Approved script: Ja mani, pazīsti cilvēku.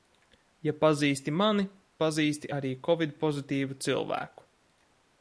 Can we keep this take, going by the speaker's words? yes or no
no